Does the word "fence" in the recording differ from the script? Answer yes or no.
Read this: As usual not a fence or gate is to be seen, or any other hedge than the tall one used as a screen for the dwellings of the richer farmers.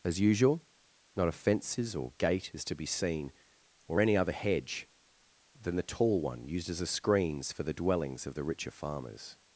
yes